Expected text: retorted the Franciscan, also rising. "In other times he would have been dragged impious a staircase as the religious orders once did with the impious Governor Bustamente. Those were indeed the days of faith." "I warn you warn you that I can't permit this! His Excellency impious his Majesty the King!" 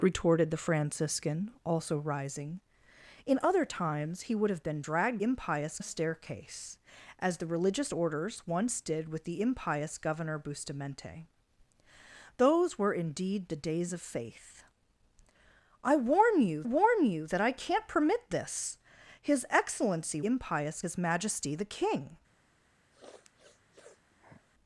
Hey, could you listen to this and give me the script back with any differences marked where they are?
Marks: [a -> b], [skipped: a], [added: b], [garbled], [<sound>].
retorted the Franciscan, also rising. "In other times he would have been dragged impious a staircase as the religious orders once did with the impious Governor Bustamente. Those were indeed the days of faith." "I warn you warn you that I can't permit this! His Excellency impious his Majesty the King!" [sniff]